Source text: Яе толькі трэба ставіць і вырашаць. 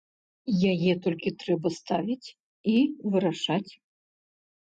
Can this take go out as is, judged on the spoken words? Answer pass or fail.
pass